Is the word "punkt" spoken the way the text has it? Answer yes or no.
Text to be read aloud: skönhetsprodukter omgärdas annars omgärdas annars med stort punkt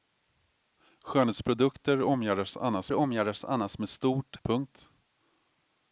yes